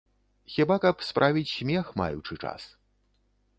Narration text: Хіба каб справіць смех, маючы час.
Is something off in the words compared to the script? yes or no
no